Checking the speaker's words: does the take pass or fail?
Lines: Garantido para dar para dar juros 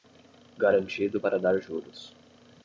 fail